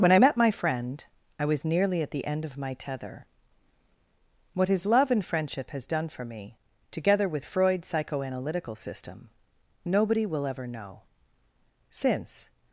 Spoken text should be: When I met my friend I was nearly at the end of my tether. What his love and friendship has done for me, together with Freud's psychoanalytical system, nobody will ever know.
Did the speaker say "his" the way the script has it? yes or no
yes